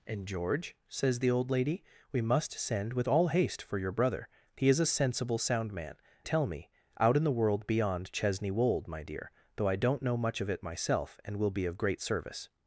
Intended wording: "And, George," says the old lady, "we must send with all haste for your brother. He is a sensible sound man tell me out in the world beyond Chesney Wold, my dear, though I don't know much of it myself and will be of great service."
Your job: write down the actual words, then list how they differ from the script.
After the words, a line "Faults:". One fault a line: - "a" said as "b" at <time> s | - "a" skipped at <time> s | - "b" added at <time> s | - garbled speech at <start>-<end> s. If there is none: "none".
"And, George," says the old lady, "we must send with all haste for your brother. He is a sensible sound man tell me out in the world beyond Chesney Wold, my dear, though I don't know much of it myself and will be of great service."
Faults:
none